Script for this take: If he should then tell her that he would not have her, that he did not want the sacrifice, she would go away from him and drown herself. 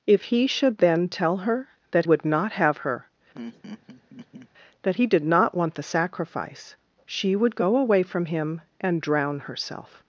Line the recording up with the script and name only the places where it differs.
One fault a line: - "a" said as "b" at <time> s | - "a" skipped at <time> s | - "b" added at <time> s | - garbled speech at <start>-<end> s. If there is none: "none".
- "he" skipped at 2.1 s